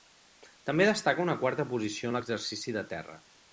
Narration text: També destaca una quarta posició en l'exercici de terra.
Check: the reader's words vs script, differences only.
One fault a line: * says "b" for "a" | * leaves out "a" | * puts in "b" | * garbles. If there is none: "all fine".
all fine